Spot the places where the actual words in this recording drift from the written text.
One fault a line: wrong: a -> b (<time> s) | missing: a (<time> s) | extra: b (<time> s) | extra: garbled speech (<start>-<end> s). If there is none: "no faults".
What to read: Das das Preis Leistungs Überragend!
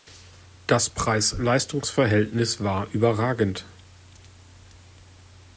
missing: das (0.9 s)
extra: Verhältnis war (1.9 s)